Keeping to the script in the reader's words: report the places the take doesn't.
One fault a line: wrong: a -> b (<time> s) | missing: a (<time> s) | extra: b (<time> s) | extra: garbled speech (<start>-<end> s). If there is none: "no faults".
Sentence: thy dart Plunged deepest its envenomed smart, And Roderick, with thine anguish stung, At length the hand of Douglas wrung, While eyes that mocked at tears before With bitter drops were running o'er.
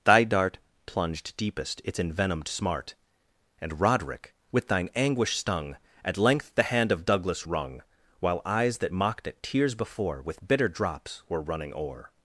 no faults